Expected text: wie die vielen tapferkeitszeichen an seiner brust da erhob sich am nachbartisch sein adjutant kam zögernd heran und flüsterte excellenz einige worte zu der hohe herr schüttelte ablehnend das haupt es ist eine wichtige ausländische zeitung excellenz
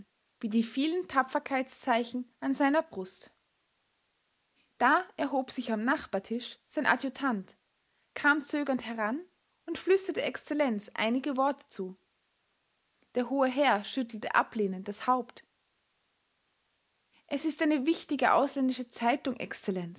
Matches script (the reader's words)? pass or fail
pass